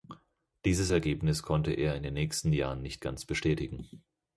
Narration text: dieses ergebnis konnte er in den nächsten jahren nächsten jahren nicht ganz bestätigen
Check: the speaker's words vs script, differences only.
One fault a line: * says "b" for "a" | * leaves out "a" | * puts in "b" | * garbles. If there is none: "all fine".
* leaves out "nächsten jahren"